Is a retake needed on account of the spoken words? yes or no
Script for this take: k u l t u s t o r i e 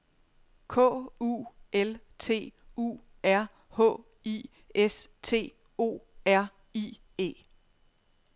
yes